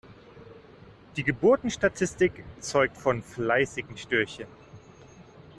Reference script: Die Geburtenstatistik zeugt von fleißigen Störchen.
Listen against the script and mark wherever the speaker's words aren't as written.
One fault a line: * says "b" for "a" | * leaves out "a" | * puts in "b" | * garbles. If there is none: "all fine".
all fine